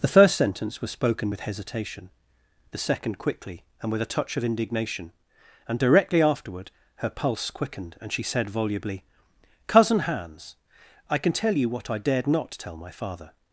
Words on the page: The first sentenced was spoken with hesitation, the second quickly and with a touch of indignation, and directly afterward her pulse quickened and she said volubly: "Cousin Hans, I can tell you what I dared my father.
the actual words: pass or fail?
fail